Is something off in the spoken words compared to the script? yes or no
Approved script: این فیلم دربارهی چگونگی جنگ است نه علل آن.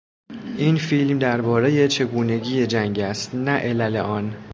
no